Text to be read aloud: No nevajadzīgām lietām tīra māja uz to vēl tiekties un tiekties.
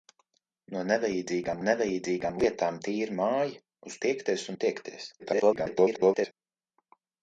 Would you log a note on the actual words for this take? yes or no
yes